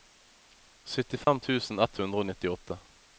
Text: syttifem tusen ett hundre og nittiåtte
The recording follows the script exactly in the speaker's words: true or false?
true